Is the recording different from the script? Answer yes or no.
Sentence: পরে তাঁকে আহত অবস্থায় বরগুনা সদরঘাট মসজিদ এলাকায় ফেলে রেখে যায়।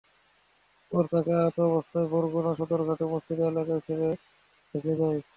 no